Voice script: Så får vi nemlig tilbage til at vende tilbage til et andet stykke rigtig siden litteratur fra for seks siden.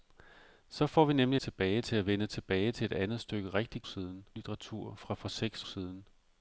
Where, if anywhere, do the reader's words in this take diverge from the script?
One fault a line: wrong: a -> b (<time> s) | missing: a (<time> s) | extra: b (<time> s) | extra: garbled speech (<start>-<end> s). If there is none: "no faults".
no faults